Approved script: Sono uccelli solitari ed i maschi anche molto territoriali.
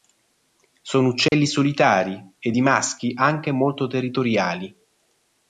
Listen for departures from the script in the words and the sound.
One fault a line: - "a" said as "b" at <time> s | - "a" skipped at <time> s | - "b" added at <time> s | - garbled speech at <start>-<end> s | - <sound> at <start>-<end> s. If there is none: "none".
- dropout at 1.3-1.3 s